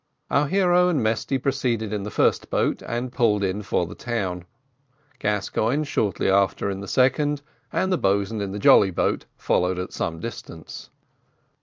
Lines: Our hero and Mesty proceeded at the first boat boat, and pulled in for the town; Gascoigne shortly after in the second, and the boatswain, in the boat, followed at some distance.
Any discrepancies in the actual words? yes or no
yes